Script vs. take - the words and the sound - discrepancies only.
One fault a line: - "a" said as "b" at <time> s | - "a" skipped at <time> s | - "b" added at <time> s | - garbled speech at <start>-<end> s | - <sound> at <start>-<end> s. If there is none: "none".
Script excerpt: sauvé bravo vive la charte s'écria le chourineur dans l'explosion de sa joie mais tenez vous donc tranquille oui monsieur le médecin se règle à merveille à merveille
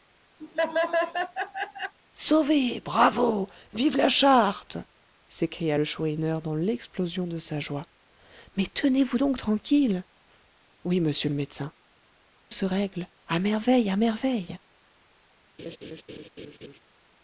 - laugh at 0.4-1.9 s
- laugh at 15.6-16.8 s